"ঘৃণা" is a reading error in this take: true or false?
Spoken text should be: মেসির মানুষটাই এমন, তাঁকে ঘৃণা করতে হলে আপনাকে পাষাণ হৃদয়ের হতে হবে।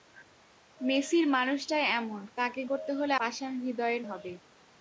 true